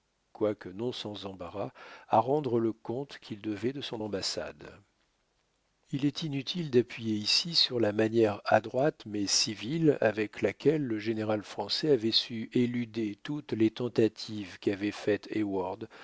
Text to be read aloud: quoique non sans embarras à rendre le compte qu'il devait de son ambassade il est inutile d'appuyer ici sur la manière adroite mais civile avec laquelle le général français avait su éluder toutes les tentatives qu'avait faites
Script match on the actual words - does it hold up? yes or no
yes